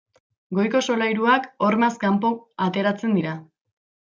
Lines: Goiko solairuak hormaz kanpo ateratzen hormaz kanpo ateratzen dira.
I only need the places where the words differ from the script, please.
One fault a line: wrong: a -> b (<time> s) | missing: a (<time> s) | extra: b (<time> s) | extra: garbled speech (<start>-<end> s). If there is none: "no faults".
missing: hormaz kanpo ateratzen (3.2 s)